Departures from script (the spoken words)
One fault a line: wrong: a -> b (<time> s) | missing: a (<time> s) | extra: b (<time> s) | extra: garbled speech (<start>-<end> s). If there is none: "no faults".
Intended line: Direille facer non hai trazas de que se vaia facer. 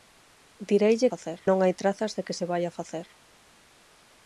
no faults